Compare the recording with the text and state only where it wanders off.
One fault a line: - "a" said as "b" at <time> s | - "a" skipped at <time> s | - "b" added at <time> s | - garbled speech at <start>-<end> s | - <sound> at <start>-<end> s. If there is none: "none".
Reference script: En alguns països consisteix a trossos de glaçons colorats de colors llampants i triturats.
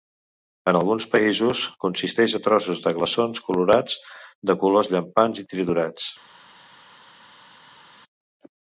none